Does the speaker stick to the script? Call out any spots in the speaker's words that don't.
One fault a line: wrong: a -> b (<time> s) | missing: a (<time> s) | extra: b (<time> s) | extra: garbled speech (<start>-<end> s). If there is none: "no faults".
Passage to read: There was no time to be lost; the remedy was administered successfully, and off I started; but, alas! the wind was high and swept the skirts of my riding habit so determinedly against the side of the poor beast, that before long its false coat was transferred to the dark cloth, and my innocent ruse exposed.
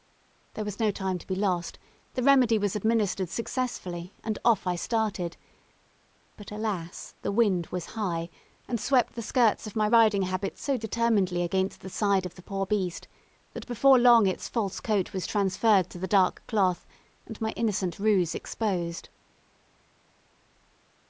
no faults